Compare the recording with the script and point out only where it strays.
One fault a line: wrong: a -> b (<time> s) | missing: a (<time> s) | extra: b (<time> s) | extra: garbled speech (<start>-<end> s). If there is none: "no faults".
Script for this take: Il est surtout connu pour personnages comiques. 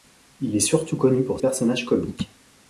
no faults